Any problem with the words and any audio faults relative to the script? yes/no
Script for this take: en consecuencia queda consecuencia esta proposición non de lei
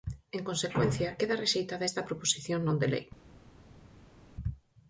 yes